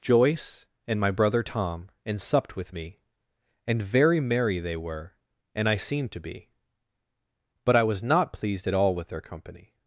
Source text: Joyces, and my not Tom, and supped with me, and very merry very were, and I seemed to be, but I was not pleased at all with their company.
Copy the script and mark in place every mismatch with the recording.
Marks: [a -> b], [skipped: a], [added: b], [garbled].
[Joyces, -> Joyce] and my [not -> brother] Tom, and supped with me, and very merry [very -> they] were, and I seemed to be, but I was not pleased at all with their company.